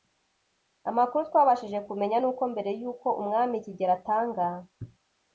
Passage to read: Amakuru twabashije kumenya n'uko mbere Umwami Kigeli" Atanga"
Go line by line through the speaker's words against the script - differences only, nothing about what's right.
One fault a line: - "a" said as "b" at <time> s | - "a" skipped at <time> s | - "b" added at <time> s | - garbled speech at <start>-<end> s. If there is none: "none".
- "y'uko" added at 2.8 s